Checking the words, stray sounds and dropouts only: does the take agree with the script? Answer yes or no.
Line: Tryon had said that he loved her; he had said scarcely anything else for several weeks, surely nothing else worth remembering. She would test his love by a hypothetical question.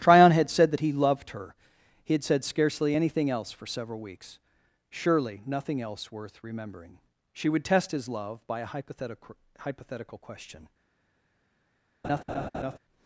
no